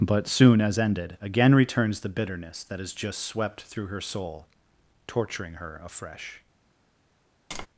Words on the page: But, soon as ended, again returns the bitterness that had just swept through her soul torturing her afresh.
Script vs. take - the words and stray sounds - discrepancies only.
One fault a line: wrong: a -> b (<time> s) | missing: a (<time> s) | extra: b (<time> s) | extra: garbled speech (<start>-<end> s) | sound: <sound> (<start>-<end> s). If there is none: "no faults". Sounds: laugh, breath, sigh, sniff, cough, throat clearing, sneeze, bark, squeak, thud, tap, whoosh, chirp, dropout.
wrong: had -> has (2.8 s)
sound: tap (7.5-7.7 s)